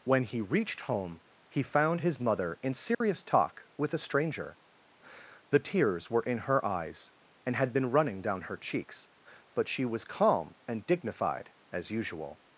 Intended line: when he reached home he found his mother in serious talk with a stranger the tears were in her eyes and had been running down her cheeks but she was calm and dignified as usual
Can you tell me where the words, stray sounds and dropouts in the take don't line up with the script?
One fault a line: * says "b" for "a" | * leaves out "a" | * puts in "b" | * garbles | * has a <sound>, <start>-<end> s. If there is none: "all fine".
* has a dropout, 2.9-3.0 s